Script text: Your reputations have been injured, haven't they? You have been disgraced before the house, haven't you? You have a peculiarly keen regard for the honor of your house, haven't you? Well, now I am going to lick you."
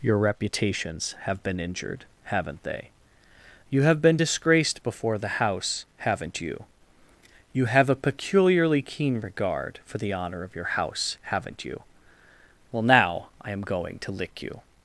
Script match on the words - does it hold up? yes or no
yes